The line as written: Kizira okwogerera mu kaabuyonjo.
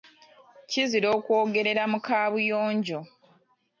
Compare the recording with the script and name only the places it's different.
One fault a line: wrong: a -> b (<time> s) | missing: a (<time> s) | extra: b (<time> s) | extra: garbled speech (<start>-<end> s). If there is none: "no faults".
no faults